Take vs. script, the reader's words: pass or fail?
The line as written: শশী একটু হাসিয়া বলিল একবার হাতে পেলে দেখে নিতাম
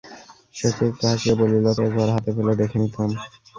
pass